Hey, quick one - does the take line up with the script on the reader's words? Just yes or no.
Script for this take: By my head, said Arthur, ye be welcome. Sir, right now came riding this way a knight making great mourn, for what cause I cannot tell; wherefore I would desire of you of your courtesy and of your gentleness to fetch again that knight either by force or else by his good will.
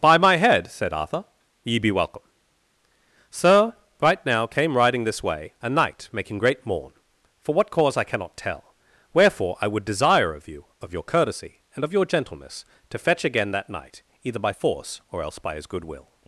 yes